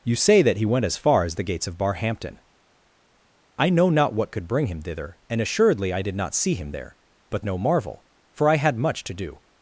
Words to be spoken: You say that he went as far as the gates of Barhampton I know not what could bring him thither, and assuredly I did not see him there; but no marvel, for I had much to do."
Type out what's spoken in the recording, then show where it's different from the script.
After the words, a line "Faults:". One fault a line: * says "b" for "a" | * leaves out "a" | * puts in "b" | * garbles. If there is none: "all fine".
You say that he went as far as the gates of Barhampton I know not what could bring him thither, and assuredly I did not see him there; but no marvel, for I had much to do."
Faults:
all fine